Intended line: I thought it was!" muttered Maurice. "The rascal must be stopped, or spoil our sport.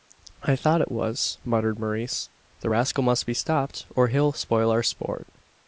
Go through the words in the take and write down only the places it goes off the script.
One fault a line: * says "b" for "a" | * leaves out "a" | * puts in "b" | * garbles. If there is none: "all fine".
* puts in "he'll"